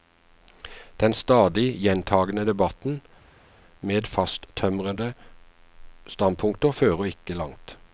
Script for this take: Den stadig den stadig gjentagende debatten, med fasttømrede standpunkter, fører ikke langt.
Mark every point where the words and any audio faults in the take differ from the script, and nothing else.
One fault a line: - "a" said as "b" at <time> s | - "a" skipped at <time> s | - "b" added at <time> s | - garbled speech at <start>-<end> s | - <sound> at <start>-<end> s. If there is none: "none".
- "den stadig" skipped at 1.8 s